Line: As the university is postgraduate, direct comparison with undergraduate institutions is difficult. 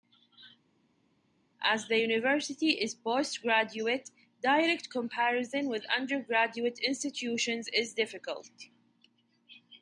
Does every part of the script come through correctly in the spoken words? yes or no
yes